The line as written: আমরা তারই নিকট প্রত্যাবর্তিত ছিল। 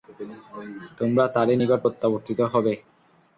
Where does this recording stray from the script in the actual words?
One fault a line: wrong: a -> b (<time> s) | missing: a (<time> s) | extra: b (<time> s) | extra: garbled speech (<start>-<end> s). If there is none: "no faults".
wrong: আমরা -> তোমরা (1.0 s)
wrong: ছিল -> হবে (2.5 s)